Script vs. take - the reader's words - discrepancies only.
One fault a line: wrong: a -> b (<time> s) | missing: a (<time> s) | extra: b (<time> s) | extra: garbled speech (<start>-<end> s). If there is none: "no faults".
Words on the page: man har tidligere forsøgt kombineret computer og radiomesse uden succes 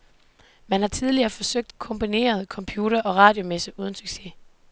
no faults